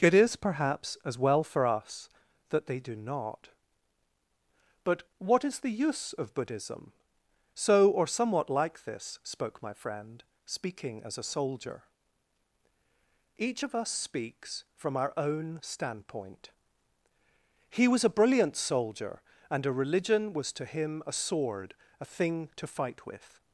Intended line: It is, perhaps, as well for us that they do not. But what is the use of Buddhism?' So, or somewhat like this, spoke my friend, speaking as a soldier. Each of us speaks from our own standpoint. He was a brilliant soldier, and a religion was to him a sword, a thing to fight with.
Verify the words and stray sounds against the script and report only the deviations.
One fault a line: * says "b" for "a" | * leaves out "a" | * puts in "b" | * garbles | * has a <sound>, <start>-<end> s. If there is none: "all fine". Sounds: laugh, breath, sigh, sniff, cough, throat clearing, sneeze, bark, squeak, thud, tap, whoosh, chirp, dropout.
all fine